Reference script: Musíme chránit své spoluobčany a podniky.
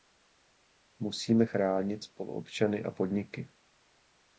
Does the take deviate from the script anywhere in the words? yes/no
yes